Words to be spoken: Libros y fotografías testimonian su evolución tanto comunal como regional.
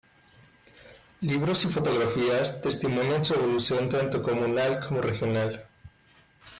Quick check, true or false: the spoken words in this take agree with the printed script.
true